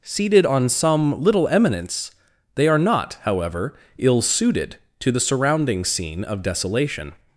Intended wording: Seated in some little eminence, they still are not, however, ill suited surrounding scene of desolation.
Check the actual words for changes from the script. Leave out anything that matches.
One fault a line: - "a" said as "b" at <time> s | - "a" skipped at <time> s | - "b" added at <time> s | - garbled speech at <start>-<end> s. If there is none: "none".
- "in" said as "on" at 0.5 s
- "still" skipped at 2.7 s
- "to the" added at 5.0 s